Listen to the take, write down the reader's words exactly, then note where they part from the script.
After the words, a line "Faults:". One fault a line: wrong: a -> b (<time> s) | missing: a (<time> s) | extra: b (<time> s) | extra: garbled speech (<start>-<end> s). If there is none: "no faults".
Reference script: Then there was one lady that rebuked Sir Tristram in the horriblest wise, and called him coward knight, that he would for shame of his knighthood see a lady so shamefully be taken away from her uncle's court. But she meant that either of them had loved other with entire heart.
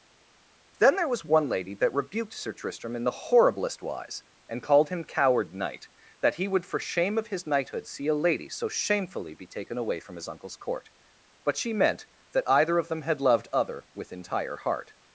Then there was one lady that rebuked Sir Tristram in the horriblest wise, and called him coward knight, that he would for shame of his knighthood see a lady so shamefully be taken away from his uncle's court. But she meant that either of them had loved other with entire heart.
Faults:
wrong: her -> his (10.2 s)